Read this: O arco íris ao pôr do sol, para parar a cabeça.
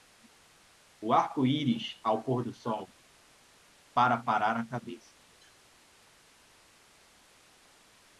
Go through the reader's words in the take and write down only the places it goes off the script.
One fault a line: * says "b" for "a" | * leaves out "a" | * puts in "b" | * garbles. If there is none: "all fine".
all fine